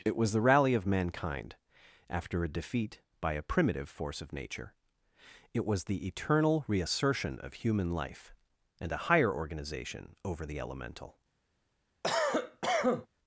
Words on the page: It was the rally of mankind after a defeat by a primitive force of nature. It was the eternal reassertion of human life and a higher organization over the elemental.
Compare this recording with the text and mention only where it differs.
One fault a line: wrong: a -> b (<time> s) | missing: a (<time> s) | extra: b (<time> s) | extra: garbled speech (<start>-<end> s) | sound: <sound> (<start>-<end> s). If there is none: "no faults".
sound: cough (12.0-13.1 s)